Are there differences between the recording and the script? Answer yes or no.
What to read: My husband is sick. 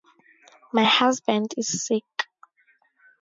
no